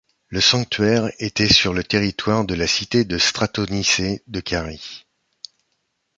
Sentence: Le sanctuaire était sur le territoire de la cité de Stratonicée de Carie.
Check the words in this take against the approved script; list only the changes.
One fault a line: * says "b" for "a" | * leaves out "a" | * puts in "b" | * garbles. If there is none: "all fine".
all fine